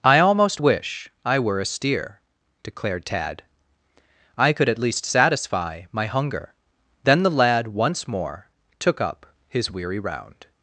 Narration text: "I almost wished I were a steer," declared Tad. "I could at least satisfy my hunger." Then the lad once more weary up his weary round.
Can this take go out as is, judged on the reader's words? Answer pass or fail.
fail